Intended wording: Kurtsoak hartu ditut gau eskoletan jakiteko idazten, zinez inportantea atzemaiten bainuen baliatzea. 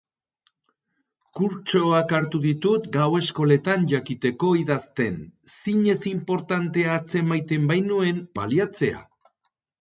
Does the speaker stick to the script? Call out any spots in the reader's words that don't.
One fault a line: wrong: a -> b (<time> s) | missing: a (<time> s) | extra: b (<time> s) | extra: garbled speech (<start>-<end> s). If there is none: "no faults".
no faults